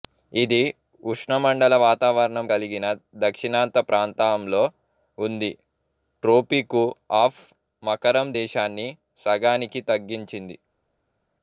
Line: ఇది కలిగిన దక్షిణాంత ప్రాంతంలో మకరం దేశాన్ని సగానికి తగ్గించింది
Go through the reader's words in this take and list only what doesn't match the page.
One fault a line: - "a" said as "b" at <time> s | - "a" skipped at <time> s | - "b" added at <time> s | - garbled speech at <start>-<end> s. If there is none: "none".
- "ఉష్ణమండల వాతావరణం" added at 1.0 s
- "ఉంది ట్రోపికు ఆఫ్" added at 5.2 s